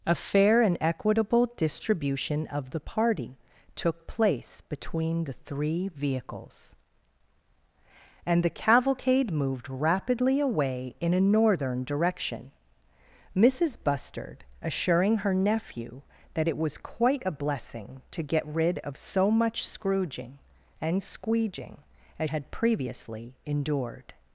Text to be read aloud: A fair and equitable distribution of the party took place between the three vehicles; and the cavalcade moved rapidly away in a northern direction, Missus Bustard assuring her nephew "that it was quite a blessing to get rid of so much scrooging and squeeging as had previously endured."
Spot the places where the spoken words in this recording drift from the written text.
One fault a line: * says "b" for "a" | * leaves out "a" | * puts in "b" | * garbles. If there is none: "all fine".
all fine